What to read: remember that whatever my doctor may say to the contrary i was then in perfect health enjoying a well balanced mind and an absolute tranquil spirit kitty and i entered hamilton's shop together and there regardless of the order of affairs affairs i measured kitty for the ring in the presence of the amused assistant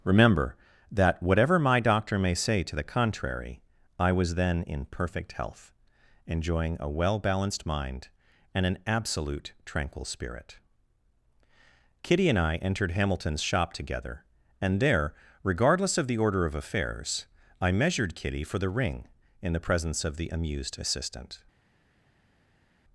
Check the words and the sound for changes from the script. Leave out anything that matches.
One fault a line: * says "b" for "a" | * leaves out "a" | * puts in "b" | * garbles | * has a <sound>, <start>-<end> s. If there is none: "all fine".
* leaves out "affairs"